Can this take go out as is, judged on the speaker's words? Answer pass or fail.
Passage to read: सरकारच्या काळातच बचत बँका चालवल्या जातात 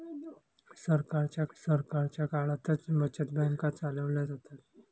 fail